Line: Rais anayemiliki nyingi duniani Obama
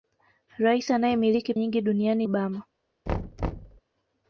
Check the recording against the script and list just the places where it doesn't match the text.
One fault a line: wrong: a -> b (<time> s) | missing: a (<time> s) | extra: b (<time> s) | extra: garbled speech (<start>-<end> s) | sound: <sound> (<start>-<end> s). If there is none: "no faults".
sound: thud (3.1-3.8 s)